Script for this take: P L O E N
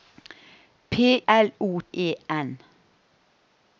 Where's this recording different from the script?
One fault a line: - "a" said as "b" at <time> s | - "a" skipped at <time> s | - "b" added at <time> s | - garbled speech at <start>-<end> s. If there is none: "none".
none